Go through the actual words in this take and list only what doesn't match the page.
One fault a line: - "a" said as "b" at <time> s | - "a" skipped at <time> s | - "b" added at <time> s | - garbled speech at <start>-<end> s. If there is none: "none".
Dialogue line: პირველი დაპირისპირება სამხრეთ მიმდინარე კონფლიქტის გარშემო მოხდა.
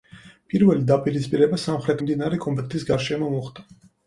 none